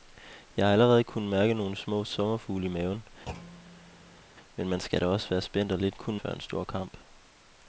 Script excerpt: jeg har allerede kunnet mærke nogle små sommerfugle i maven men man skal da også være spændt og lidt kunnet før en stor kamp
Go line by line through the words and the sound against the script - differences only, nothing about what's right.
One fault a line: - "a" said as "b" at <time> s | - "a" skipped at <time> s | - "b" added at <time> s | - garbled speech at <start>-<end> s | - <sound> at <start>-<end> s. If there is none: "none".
- thud at 3.3-4.2 s